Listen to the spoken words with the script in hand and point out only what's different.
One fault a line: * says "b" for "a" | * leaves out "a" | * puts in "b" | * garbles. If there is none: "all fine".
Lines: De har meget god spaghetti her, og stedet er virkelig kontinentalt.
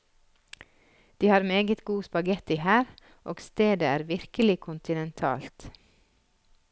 all fine